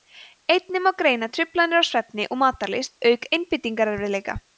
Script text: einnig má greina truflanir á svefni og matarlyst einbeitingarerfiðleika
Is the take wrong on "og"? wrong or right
right